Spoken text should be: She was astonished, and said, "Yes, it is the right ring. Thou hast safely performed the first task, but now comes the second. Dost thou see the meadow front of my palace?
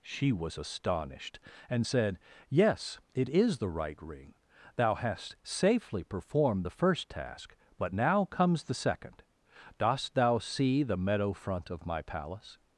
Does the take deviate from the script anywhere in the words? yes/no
no